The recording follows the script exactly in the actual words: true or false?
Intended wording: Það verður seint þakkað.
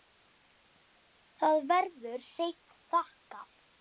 true